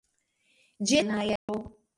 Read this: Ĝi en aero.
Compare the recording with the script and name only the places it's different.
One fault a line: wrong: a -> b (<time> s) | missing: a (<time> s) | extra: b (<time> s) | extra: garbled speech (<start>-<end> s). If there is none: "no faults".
no faults